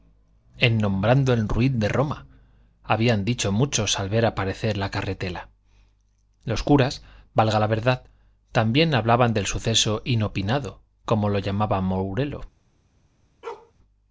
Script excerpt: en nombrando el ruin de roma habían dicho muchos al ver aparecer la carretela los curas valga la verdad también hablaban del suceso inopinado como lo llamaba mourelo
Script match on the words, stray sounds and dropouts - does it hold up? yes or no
no